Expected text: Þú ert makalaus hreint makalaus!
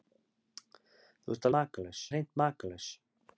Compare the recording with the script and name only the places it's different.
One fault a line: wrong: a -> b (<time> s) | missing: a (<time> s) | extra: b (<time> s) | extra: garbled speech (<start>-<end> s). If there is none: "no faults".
no faults